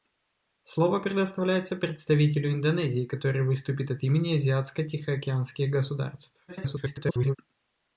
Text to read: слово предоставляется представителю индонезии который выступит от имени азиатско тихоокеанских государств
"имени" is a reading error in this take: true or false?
false